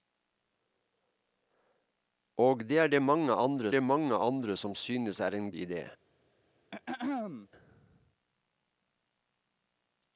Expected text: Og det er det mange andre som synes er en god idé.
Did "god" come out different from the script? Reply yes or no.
yes